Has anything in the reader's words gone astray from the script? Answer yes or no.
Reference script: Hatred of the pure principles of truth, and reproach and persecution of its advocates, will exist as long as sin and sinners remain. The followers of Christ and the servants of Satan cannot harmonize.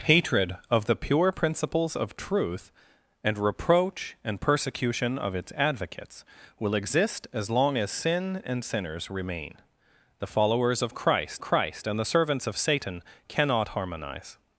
yes